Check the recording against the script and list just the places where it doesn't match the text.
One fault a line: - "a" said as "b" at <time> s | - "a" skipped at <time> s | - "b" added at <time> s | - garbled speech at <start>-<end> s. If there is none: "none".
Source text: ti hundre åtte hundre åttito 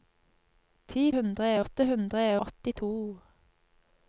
none